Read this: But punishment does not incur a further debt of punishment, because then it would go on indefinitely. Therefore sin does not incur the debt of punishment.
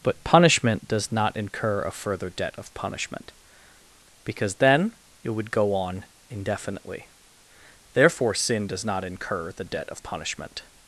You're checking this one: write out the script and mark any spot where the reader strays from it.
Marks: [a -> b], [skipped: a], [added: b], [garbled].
But punishment does not incur a further debt of punishment, because then it would go on indefinitely. Therefore sin does not incur the debt of punishment.